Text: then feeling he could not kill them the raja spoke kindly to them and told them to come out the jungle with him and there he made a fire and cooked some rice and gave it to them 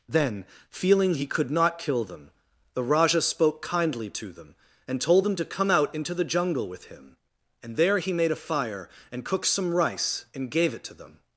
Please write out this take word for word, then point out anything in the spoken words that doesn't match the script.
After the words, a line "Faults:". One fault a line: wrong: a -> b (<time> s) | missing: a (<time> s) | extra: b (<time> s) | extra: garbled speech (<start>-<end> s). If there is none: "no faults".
then feeling he could not kill them the raja spoke kindly to them and told them to come out into the jungle with him and there he made a fire and cooked some rice and gave it to them
Faults:
extra: into (5.9 s)